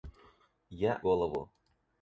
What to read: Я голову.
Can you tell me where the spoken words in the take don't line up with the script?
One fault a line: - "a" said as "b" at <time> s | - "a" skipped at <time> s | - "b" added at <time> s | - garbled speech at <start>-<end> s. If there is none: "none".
none